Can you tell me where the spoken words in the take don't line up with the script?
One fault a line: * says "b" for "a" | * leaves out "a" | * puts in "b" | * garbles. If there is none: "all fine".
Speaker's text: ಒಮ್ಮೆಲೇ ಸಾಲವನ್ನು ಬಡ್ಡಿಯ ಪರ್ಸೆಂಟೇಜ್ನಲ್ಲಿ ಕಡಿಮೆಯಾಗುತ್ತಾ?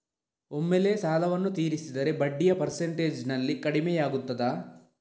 * puts in "ತೀರಿಸಿದರೆ"